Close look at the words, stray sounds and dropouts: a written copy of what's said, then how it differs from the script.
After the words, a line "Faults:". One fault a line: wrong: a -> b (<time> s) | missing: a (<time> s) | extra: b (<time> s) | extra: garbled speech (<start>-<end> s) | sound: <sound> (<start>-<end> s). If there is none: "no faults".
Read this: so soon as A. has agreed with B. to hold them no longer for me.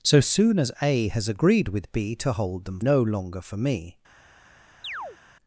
so soon as A. has agreed with B. to hold them no longer for me.
Faults:
sound: chirp (4.8-5.2 s)